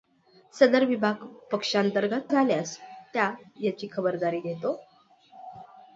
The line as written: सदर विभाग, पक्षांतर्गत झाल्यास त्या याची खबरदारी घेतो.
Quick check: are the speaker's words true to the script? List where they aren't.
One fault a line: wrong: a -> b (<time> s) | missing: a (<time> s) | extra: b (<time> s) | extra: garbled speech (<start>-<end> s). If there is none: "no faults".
no faults